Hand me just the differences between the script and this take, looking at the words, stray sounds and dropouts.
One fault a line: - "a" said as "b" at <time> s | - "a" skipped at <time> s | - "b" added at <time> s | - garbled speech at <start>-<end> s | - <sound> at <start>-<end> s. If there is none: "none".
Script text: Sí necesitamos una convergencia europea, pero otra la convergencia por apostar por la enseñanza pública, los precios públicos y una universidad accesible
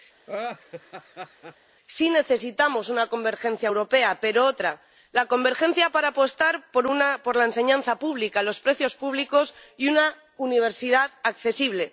- laugh at 0.3-1.6 s
- "por" said as "para" at 5.9 s